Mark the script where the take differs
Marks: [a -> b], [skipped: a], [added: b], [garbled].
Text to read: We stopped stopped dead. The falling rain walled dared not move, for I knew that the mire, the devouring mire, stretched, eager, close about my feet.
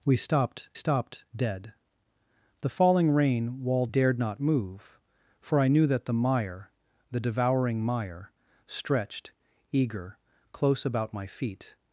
We stopped stopped dead. The falling rain walled dared not move, for I knew that the mire, the devouring mire, stretched, eager, close about my feet.